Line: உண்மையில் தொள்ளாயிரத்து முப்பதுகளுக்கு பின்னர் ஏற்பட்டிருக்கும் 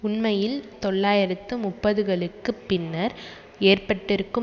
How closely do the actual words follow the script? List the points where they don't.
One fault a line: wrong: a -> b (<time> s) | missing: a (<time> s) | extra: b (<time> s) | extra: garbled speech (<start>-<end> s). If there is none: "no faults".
no faults